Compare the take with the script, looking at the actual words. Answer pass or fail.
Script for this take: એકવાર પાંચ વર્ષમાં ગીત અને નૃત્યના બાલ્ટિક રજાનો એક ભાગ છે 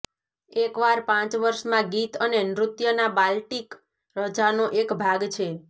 pass